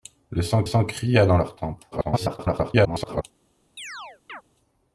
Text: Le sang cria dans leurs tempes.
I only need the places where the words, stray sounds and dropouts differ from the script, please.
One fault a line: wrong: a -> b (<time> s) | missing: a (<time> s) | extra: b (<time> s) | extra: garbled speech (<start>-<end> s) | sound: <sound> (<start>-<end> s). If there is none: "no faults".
extra: sang (0.6 s)
extra: garbled speech (1.9-3.2 s)
sound: chirp (3.8-4.4 s)